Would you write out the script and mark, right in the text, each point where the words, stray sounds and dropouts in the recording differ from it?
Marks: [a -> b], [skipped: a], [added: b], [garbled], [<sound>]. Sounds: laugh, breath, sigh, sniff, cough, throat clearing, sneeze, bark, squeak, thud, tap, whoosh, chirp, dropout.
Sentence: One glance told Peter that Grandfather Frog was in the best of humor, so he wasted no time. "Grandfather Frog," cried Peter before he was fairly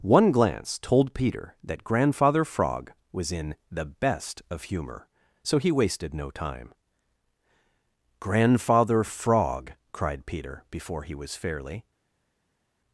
One glance told Peter that Grandfather Frog was in the best of humor, so he wasted no time. "Grandfather Frog," cried Peter before he was fairly